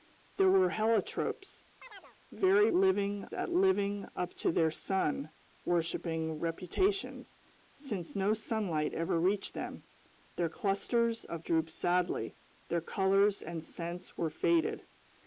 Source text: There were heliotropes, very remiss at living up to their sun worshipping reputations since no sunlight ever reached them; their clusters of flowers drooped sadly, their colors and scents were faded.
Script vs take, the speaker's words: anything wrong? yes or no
yes